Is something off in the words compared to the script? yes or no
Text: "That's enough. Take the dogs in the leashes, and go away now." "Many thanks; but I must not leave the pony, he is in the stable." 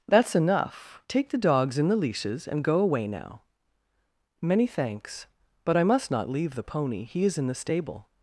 no